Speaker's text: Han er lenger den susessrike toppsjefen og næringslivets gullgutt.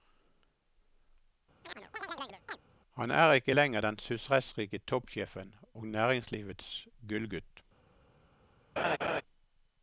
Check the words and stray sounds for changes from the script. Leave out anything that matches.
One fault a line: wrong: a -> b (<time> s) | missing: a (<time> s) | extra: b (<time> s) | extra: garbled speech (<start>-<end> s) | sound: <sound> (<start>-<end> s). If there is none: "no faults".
sound: chirp (1.6-2.6 s)
extra: ikke (3.3 s)
sound: laugh (8.8-9.2 s)